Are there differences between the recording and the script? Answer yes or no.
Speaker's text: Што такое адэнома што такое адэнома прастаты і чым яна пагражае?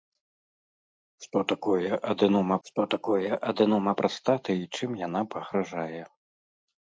no